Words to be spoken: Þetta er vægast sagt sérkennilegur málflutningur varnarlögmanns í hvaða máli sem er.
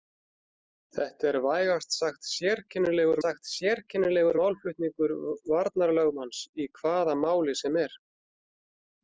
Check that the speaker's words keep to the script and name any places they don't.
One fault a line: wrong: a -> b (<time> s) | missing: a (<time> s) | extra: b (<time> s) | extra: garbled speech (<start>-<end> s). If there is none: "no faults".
extra: sagt sérkennilegur (3.2 s)